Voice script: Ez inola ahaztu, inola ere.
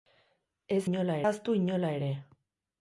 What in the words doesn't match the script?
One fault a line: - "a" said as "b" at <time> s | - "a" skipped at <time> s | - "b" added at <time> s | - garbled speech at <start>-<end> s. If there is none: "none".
none